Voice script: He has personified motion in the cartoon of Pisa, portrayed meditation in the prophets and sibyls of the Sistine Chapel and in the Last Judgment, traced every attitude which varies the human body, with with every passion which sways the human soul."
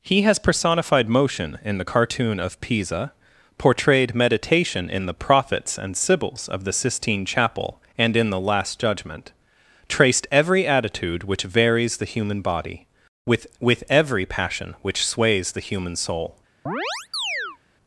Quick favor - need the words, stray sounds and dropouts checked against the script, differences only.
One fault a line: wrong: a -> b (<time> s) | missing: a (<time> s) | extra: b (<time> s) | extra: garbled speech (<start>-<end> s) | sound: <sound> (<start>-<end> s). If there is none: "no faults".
sound: chirp (16.7-17.6 s)